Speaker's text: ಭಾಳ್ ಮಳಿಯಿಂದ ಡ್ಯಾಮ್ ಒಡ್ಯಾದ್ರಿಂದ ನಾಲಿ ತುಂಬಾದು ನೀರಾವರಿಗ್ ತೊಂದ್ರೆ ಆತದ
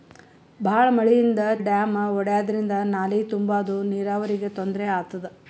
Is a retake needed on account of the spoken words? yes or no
no